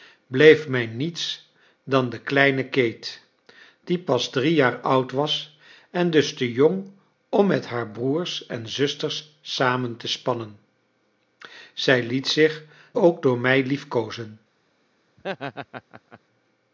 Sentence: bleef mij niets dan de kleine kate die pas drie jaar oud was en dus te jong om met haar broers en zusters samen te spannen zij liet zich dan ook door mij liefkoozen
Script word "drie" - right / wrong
right